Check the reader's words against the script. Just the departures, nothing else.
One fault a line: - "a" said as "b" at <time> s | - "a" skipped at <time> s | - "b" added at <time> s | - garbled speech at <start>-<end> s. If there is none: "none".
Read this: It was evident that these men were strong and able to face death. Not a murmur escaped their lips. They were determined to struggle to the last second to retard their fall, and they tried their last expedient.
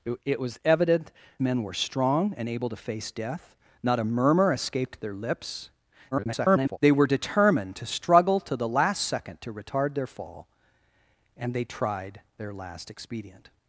- "that these" skipped at 1.1 s
- garbled speech at 6.1-6.8 s